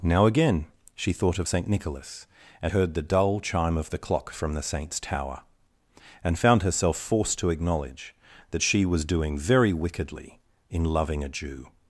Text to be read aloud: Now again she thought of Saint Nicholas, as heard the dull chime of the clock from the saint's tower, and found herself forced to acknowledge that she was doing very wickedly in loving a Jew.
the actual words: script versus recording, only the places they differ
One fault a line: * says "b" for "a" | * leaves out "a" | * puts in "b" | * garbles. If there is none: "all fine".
all fine